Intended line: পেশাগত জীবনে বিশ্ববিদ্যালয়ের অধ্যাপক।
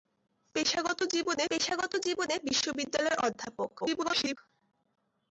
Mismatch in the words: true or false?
true